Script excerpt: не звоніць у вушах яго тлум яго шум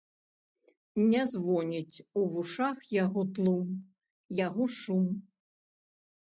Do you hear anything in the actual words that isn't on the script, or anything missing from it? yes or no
no